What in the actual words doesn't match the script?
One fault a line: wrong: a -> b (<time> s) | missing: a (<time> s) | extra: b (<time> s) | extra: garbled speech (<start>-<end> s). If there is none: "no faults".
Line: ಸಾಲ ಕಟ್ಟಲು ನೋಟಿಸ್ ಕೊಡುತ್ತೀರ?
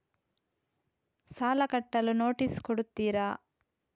no faults